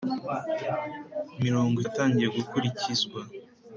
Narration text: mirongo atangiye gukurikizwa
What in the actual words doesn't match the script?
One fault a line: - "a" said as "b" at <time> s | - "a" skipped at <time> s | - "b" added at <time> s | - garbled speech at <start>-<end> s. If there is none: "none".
none